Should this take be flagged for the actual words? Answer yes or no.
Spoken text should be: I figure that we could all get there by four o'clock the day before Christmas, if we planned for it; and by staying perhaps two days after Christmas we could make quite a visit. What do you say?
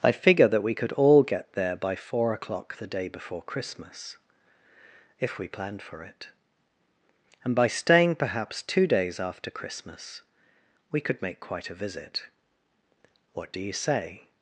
no